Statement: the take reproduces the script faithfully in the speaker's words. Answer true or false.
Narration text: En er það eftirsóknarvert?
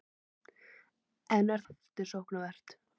false